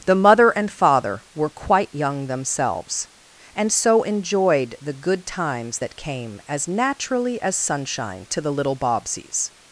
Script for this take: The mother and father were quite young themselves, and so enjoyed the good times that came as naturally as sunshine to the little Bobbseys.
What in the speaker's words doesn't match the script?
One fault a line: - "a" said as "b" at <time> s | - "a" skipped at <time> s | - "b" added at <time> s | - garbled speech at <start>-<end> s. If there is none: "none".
none